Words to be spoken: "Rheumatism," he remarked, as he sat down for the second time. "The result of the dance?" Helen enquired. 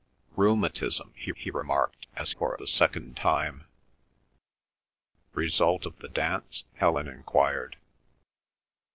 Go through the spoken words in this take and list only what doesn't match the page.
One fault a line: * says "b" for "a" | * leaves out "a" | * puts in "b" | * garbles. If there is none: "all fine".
* puts in "he"
* leaves out "he sat down"
* leaves out "The"